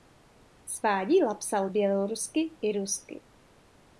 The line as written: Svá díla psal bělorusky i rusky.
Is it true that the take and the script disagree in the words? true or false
false